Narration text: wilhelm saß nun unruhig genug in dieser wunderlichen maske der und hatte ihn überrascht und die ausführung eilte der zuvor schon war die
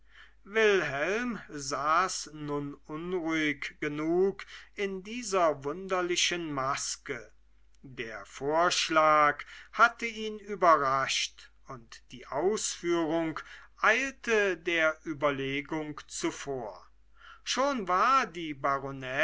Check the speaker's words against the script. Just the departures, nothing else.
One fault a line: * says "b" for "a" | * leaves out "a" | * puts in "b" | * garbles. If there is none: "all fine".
* says "vorschlag" for "und"
* puts in "überlegung"